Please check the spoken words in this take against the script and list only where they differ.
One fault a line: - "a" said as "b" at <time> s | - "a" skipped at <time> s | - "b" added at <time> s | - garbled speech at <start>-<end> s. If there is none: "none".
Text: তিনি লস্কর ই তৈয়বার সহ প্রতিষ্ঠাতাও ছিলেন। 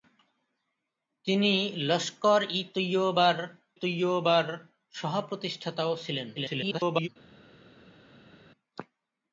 - "তৈয়বার" added at 3.8 s
- garbled speech at 6.4-7.1 s